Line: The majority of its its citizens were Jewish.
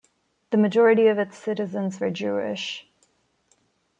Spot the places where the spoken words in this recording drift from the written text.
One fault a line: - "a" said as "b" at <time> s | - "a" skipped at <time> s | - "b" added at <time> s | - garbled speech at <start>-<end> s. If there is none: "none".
- "its" skipped at 1.4 s